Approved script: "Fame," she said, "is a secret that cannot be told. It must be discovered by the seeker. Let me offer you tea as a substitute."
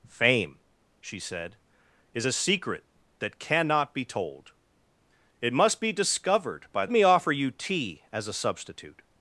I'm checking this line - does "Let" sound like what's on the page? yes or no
no